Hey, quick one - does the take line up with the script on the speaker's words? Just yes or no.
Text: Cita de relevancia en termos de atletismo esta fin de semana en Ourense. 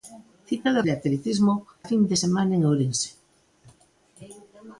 no